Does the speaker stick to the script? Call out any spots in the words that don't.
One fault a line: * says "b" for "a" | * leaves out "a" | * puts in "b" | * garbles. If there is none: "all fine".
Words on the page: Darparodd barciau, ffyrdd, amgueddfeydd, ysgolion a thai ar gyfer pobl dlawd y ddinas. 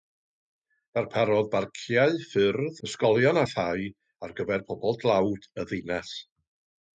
* leaves out "amgueddfeydd"